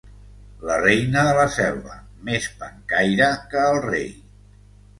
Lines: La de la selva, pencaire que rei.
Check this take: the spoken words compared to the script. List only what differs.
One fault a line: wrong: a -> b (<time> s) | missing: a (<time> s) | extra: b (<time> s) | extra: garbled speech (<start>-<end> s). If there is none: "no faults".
extra: reina (0.8 s)
extra: més (2.3 s)
extra: el (3.7 s)